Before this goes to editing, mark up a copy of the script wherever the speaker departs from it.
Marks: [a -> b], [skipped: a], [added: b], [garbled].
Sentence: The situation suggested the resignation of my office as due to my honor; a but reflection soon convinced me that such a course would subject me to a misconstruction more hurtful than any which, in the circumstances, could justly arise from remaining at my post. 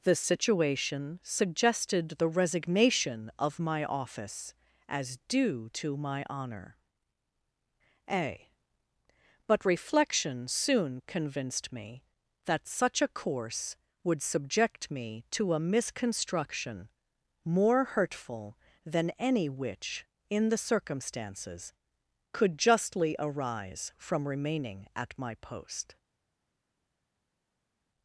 The situation suggested the resignation of my office as due to my honor; a but reflection soon convinced me that such a course would subject me to a misconstruction more hurtful than any which, in the circumstances, could justly arise from remaining at my post.